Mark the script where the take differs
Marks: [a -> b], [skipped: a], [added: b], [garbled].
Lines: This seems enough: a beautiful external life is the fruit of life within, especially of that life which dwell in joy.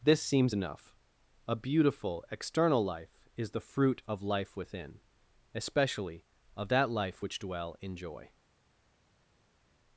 This seems enough: a beautiful external life is the fruit of life within, especially of that life which dwell in joy.